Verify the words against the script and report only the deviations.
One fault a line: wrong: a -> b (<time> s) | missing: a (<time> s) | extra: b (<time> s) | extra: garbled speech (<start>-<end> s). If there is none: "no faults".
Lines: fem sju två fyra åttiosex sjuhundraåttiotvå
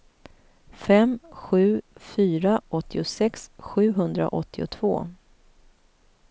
missing: två (1.8 s)